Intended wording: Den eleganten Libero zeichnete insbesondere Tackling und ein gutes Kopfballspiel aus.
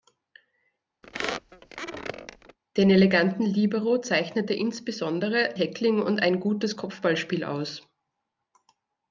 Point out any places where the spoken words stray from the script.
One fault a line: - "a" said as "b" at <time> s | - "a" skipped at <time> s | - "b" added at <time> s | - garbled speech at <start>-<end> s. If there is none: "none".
none